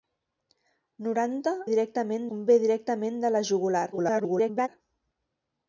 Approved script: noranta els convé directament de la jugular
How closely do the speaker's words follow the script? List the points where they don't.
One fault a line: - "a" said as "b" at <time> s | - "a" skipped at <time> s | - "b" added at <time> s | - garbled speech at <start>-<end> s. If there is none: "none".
- "els" said as "directament" at 1.7 s
- garbled speech at 3.9-4.7 s